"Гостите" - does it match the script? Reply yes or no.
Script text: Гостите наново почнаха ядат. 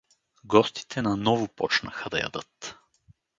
yes